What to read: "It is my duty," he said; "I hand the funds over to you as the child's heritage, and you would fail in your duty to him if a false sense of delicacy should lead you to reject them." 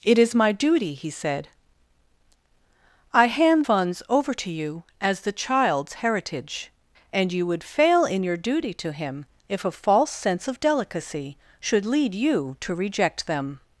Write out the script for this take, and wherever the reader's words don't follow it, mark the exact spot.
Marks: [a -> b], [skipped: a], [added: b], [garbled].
"It is my duty," he said; "I hand [skipped: the] funds over to you as the child's heritage, and you would fail in your duty to him if a false sense of delicacy should lead you to reject them."